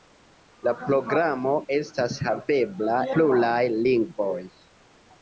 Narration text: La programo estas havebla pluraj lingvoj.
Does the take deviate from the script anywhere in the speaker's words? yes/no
no